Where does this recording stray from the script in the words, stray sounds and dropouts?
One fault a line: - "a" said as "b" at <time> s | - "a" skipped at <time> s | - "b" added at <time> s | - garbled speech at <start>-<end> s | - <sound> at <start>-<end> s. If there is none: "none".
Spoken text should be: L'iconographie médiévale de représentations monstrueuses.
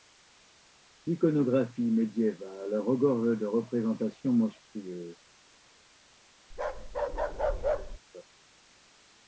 - "regorge" added at 2.8 s
- bark at 6.5-8.0 s